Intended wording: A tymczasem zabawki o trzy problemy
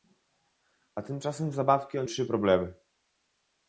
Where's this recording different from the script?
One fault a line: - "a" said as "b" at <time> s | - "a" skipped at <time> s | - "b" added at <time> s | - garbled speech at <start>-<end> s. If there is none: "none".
none